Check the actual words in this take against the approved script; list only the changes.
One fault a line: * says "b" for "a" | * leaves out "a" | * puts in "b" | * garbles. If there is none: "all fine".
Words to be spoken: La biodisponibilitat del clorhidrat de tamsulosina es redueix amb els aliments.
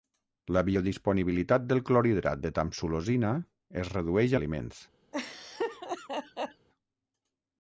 * leaves out "amb els"